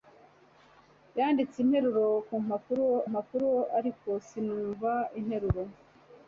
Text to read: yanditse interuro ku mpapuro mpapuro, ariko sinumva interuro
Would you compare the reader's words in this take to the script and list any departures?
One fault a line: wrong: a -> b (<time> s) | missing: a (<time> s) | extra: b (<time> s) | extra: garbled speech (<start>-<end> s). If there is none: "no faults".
no faults